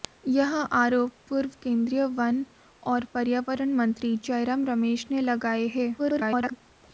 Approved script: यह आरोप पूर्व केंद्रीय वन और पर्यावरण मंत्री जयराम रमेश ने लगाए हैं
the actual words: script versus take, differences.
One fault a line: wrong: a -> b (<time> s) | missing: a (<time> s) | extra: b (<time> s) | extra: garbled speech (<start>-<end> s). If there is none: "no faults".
extra: garbled speech (6.0-6.6 s)